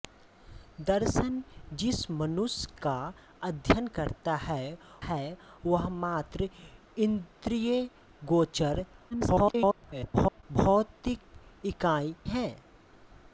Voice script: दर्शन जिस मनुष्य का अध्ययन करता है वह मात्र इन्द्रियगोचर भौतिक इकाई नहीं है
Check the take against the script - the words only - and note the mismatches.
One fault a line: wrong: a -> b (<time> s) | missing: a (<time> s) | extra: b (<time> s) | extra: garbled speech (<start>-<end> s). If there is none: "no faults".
extra: है (5.0 s)
extra: garbled speech (9.1-10.4 s)
missing: नहीं (12.1 s)